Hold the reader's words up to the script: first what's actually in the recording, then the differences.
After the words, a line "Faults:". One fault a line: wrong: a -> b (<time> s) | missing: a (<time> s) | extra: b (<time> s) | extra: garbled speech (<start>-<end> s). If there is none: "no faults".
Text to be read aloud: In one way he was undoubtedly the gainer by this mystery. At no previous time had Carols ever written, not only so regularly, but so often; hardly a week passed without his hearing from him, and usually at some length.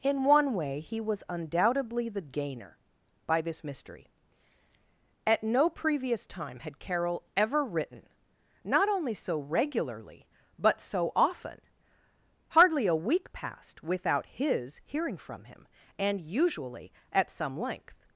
In one way he was undoubtedly the gainer by this mystery. At no previous time had Carol ever written, not only so regularly, but so often; hardly a week passed without his hearing from him, and usually at some length.
Faults:
wrong: Carols -> Carol (6.8 s)